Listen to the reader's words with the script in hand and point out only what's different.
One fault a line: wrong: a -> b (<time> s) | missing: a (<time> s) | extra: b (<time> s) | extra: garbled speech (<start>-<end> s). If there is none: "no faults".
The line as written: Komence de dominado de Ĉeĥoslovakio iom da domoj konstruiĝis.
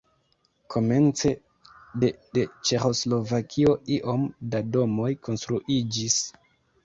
missing: dominado (2.1 s)